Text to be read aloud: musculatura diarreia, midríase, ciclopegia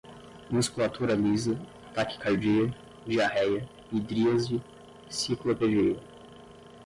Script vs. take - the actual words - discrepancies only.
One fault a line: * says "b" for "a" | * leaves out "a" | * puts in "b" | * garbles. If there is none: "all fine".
* puts in "lisa taquicardia"